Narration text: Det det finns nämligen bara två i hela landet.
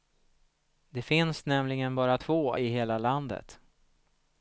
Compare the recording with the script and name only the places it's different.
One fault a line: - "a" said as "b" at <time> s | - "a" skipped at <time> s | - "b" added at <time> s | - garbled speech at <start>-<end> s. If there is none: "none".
- "det" skipped at 1.0 s